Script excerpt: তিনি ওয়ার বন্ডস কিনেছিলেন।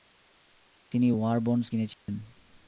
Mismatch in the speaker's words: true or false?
false